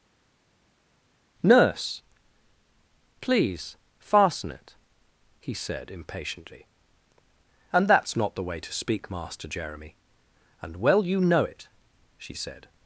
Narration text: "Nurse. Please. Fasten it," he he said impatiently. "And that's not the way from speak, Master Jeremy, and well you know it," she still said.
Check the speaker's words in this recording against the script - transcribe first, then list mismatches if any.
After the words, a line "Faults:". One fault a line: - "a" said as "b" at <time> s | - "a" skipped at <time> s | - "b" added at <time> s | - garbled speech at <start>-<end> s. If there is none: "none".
"Nurse. Please. Fasten it," he said impatiently. "And that's not the way to speak, Master Jeremy, and well you know it," she said.
Faults:
- "he" skipped at 5.5 s
- "from" said as "to" at 8.6 s
- "still" skipped at 12.3 s